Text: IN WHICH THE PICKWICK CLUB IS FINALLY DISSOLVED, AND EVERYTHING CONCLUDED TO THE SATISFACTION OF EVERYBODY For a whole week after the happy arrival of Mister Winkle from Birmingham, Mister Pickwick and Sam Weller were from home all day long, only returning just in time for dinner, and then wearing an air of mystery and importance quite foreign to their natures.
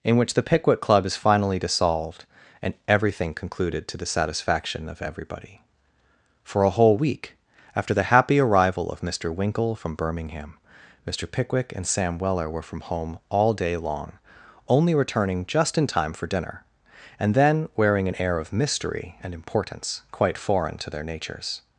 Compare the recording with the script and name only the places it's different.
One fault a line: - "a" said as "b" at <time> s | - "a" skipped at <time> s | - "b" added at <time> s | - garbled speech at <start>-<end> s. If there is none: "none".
none